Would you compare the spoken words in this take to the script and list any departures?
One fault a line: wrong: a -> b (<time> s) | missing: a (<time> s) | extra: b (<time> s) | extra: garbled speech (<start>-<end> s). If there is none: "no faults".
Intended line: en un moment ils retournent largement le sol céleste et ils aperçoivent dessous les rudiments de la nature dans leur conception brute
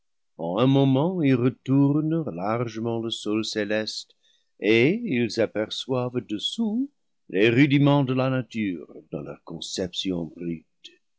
no faults